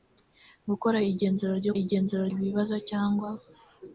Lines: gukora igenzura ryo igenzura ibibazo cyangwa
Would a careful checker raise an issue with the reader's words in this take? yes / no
no